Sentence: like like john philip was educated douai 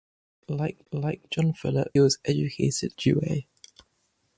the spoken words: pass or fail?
pass